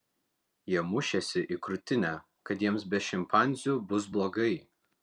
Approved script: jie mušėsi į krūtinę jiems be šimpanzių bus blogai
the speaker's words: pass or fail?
fail